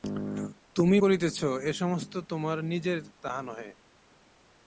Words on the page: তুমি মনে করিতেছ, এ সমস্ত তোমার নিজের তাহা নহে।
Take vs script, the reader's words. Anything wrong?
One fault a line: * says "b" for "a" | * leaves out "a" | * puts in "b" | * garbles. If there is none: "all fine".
* leaves out "মনে"